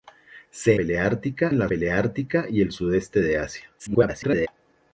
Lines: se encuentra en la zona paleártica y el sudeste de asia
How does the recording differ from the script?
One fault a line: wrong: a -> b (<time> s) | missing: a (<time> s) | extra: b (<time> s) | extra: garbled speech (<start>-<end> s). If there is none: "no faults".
wrong: encuentra -> paleártica (0.7 s)
missing: zona (1.7 s)
extra: garbled speech (3.8-4.5 s)